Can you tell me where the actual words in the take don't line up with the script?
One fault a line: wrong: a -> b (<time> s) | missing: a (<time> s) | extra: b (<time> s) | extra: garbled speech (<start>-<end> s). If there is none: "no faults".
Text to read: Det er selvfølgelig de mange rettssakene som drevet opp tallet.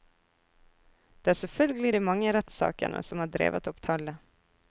extra: har (3.2 s)